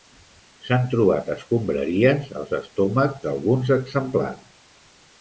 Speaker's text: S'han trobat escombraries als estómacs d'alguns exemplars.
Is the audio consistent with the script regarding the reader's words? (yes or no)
yes